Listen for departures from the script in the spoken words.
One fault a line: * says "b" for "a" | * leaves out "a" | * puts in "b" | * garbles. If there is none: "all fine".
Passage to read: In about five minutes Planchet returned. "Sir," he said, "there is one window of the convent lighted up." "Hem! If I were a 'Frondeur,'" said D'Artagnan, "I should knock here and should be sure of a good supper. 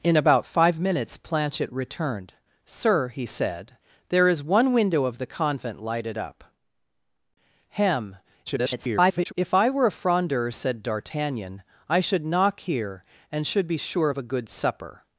* garbles